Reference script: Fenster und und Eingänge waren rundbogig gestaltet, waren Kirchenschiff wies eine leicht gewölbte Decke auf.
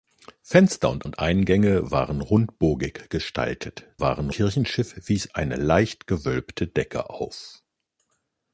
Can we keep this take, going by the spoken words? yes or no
yes